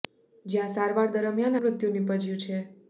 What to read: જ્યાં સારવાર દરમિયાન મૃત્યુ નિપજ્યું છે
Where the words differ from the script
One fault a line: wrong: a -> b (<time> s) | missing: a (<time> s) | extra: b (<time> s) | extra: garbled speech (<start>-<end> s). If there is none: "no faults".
no faults